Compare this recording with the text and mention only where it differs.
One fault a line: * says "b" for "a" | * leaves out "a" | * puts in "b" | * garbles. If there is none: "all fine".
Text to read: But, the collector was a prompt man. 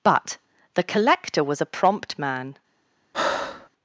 all fine